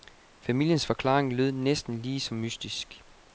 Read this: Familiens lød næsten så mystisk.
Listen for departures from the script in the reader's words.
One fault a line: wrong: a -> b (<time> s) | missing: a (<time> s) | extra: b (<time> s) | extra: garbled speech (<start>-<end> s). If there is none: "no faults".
extra: forklaring (0.8 s)
extra: lige (2.0 s)